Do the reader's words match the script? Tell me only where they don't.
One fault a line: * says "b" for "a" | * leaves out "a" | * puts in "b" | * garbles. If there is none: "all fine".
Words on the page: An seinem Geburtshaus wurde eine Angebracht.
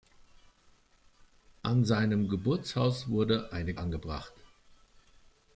all fine